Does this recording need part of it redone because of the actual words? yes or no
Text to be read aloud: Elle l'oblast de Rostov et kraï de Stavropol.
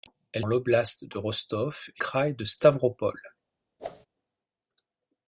no